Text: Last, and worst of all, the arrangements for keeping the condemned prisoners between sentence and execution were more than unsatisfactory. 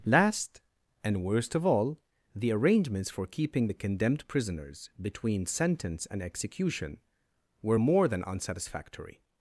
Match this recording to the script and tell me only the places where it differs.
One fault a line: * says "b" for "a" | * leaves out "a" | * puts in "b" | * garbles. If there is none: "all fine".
all fine